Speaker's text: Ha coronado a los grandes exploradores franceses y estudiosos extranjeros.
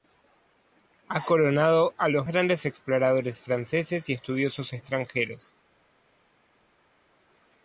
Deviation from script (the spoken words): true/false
false